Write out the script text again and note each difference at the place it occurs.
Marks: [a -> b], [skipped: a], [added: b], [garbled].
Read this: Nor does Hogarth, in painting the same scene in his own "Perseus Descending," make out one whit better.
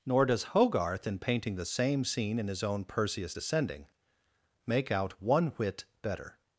Nor does Hogarth, in painting the same scene in his own "Perseus Descending," make out one whit better.